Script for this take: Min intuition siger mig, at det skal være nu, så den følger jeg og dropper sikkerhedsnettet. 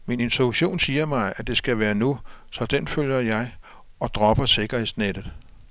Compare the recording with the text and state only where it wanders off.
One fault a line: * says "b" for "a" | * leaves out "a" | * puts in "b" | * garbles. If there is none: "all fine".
all fine